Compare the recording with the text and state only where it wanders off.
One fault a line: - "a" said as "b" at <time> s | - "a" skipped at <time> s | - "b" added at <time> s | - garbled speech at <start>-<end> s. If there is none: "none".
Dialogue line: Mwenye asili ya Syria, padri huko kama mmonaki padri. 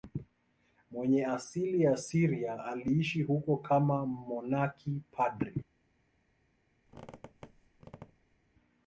- "padri" said as "aliishi" at 2.6 s